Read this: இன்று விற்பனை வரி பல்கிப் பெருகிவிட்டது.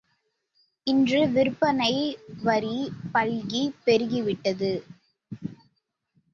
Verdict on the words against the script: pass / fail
pass